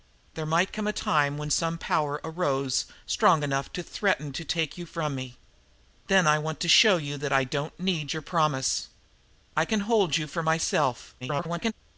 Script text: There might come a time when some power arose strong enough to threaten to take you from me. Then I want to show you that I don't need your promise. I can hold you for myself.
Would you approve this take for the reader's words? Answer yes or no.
no